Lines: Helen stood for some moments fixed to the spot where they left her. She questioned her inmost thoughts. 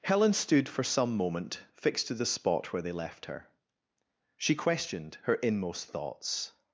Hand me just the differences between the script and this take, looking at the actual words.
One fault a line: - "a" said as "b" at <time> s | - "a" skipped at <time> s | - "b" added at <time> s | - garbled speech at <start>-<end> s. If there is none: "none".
- "moments" said as "moment" at 1.1 s